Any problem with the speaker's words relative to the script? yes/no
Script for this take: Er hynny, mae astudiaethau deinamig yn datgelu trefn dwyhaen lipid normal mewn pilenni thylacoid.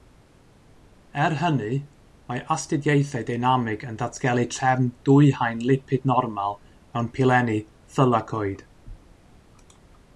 no